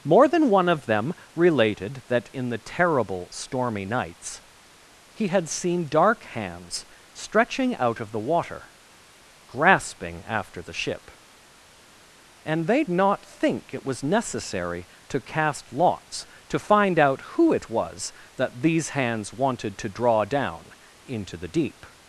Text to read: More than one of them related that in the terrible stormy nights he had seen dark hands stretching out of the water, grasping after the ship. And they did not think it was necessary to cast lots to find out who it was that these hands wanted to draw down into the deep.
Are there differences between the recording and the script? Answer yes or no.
yes